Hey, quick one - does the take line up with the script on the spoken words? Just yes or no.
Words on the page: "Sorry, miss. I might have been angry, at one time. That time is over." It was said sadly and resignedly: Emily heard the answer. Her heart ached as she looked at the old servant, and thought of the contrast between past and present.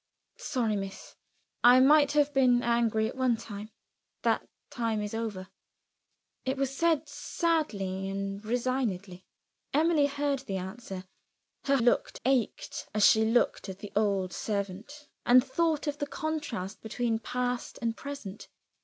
no